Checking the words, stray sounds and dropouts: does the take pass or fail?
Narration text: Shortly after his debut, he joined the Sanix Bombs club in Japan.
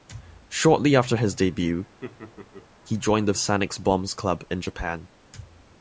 fail